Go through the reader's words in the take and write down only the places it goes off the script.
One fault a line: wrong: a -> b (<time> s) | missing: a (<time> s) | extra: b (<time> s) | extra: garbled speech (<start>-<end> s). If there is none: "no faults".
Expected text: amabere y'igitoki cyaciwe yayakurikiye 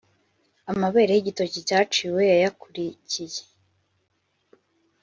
no faults